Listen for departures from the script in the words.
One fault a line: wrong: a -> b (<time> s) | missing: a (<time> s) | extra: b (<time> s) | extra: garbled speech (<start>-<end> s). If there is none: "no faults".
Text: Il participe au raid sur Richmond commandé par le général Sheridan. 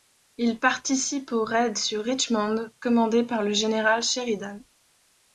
no faults